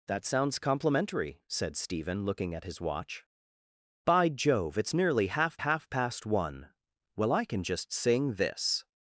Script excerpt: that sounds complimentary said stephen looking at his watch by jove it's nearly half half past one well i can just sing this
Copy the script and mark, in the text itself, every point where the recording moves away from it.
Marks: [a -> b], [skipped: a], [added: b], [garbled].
that sounds complimentary said stephen looking at his watch by jove it's nearly half half past one well i can just sing this